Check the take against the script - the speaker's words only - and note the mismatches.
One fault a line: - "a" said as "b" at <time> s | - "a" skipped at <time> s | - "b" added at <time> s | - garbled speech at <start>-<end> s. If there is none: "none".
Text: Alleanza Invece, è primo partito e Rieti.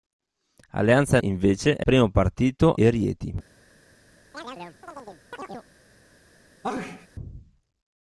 none